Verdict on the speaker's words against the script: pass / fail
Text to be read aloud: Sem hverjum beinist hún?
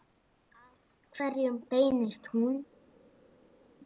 fail